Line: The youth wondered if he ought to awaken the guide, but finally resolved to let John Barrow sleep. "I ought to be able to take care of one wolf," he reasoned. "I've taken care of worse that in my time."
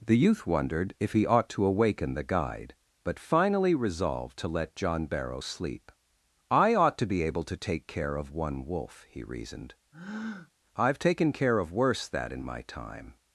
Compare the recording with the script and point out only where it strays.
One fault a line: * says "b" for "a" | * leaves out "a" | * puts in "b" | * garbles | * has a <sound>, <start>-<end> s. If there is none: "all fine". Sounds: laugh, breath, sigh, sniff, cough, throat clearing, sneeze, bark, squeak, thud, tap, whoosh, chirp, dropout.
* has a breath, 9.9-10.5 s